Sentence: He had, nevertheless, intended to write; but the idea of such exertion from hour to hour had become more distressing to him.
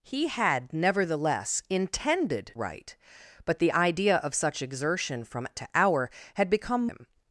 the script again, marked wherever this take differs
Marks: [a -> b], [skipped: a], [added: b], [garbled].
He had, nevertheless, intended [skipped: to] write; but the idea of such exertion from [skipped: hour] to hour had become [skipped: more distressing to] him.